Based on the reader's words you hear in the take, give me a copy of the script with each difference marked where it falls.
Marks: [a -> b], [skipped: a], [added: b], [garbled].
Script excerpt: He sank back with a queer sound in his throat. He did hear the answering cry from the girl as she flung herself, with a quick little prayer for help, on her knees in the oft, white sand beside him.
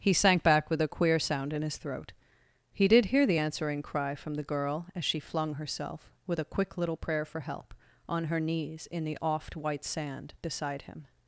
He sank back with a queer sound in his throat. He did hear the answering cry from the girl as she flung herself, with a quick little prayer for help, on her knees in the oft, white sand beside him.